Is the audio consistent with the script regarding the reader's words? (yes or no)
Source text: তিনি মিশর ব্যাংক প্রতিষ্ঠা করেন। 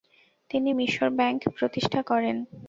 yes